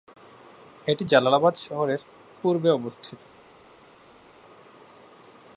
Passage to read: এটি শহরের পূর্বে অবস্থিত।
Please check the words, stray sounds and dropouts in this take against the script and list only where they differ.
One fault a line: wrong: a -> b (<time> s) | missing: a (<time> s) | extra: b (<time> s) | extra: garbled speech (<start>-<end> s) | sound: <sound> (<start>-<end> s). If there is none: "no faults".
extra: জালালাবাদ (1.0 s)